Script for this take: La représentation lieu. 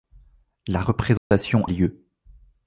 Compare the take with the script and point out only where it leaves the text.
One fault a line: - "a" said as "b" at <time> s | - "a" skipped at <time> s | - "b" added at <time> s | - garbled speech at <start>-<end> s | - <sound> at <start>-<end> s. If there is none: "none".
- dropout at 1.2-1.3 s